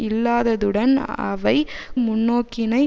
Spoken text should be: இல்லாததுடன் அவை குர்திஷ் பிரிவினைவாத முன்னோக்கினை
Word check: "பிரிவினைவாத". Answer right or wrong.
wrong